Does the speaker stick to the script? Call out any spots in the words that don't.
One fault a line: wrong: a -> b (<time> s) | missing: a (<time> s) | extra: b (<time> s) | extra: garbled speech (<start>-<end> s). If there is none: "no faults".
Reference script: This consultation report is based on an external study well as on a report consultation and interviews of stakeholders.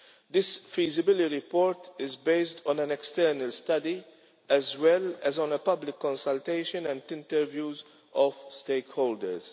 wrong: consultation -> feasibility (0.6 s)
extra: as (4.5 s)
wrong: report -> public (5.6 s)